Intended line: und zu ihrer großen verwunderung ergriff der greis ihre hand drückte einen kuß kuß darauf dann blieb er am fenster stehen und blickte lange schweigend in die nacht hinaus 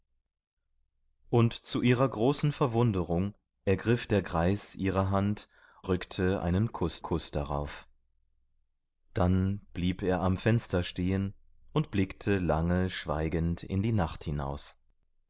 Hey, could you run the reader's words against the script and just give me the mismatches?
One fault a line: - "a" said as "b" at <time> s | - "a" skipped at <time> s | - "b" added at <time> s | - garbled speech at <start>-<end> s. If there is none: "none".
none